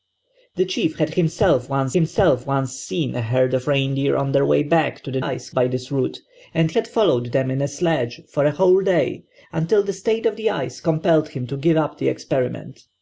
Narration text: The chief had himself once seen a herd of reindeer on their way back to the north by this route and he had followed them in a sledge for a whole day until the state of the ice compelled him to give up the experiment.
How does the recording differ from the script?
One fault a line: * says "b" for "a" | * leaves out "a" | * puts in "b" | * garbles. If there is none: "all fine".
* puts in "himself once"
* says "ice" for "north"
* leaves out "he"